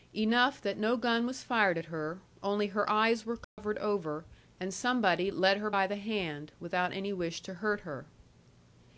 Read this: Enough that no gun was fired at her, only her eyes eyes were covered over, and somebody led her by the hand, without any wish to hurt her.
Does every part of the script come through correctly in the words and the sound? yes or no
no